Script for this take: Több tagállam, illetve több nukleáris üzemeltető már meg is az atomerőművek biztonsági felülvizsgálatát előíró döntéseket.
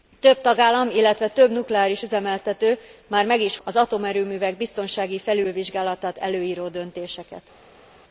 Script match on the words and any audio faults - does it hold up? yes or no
yes